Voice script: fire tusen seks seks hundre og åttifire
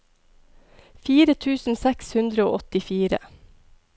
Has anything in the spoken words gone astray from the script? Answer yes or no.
yes